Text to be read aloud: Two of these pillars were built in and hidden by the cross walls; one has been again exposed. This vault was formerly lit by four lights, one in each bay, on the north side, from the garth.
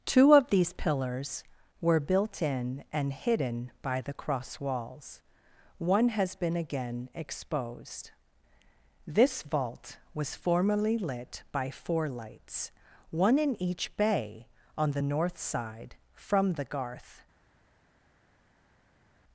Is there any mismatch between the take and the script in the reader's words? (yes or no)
no